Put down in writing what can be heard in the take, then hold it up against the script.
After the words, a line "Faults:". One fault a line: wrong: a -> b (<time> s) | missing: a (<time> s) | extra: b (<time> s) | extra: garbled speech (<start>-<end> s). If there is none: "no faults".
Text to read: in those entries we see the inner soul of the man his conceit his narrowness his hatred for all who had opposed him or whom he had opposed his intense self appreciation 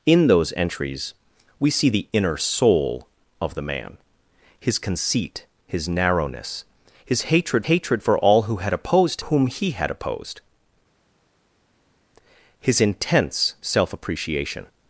in those entries we see the inner soul of the man his conceit his narrowness his hatred hatred for all who had opposed whom he had opposed his intense self appreciation
Faults:
extra: hatred (7.6 s)
missing: him or (9.2 s)